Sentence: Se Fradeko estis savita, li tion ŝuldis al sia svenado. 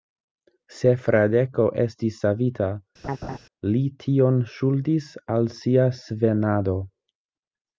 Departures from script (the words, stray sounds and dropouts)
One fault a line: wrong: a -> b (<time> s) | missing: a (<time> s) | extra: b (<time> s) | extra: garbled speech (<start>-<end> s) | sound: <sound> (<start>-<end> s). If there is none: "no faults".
sound: laugh (3.0-3.4 s)